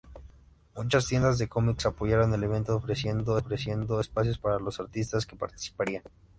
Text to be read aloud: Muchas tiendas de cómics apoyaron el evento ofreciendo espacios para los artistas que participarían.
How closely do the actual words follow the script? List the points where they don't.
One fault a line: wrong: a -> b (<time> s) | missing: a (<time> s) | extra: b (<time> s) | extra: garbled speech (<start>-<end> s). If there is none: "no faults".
extra: ofreciendo (3.4 s)